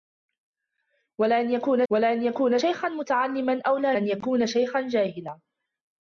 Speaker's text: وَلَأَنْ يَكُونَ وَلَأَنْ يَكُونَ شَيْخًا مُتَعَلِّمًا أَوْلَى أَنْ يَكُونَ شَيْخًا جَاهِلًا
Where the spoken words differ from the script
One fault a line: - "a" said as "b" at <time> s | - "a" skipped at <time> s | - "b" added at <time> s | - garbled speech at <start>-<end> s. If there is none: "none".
none